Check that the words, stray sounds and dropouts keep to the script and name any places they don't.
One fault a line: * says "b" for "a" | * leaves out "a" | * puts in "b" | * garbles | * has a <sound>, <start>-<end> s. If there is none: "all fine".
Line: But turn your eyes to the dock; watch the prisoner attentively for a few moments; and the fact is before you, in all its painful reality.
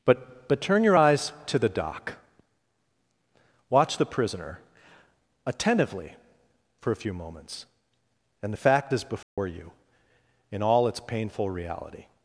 * puts in "but"
* has a dropout, 9.2-9.4 s